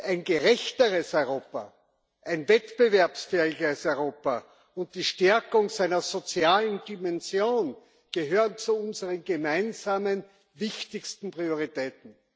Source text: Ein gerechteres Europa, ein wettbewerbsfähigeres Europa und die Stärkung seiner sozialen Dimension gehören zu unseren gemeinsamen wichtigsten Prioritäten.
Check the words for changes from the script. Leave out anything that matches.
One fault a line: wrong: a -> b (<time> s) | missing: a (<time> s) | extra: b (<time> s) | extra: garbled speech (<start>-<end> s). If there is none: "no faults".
no faults